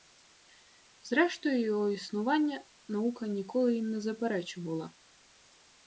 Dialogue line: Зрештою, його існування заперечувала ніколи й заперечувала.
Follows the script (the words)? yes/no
no